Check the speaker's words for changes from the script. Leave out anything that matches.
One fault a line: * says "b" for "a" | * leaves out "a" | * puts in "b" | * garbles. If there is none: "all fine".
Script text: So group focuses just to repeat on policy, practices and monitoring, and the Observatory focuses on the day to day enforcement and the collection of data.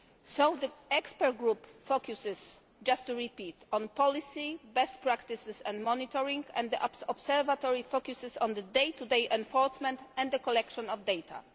* puts in "the expert"
* puts in "best"